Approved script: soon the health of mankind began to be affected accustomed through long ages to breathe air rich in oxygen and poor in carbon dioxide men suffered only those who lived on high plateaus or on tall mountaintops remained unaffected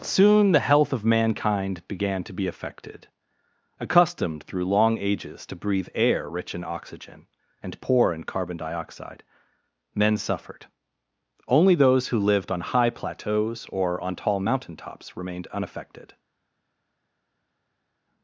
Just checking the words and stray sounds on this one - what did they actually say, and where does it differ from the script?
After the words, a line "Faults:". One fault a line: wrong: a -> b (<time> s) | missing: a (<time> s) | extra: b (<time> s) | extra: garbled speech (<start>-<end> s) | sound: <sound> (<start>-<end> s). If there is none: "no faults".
soon the health of mankind began to be affected accustomed through long ages to breathe air rich in oxygen and poor in carbon dioxide men suffered only those who lived on high plateaus or on tall mountaintops remained unaffected
Faults:
no faults